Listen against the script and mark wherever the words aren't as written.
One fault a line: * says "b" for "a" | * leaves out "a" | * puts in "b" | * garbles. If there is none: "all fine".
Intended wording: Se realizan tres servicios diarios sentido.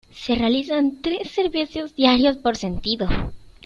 * puts in "por"